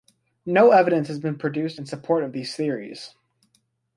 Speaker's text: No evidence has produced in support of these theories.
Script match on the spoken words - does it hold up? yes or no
no